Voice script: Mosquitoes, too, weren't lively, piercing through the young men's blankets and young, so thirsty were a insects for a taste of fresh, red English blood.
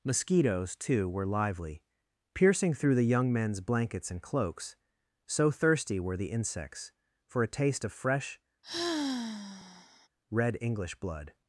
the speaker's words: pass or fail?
fail